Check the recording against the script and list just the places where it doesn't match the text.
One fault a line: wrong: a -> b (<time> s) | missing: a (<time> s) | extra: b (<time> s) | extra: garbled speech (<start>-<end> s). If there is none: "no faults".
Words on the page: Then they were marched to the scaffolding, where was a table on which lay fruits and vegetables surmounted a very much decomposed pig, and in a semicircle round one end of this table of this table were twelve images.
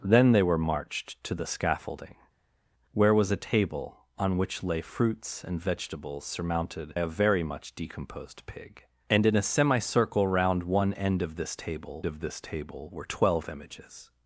no faults